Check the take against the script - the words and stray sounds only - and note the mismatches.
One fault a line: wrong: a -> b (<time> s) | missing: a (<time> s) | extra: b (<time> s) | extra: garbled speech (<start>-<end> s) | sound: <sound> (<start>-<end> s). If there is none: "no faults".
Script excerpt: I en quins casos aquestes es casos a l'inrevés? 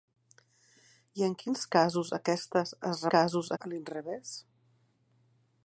no faults